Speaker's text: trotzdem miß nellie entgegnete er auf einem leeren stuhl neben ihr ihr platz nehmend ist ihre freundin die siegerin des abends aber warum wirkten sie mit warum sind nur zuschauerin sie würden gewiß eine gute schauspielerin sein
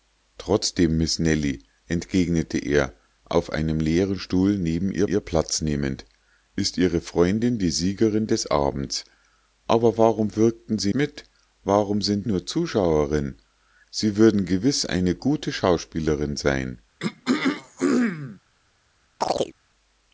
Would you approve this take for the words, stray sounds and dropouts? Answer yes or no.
no